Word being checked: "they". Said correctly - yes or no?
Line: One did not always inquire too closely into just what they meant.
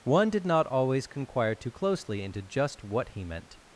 no